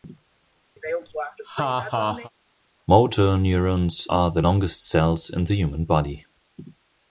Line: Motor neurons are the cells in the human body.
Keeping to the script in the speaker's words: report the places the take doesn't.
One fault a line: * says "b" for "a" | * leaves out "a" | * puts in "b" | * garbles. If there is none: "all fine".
* puts in "longest"